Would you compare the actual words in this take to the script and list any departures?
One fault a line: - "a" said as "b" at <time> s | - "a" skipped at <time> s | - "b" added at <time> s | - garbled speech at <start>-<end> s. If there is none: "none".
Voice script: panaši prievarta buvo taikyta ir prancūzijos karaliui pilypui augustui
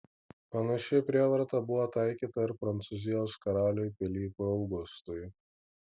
none